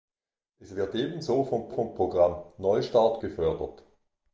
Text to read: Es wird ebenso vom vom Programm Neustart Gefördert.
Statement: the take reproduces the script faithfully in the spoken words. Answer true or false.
true